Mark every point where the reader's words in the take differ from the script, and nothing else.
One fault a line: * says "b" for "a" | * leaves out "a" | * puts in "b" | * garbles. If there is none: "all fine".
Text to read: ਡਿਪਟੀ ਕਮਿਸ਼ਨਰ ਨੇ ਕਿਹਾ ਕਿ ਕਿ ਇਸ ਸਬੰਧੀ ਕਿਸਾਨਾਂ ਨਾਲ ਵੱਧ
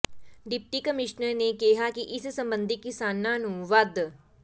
* leaves out "ਕਿ"
* says "ਨੂੰ" for "ਨਾਲ"